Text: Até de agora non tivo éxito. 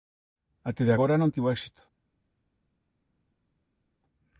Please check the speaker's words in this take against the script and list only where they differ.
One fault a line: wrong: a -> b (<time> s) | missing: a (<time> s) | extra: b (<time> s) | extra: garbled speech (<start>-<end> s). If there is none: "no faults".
no faults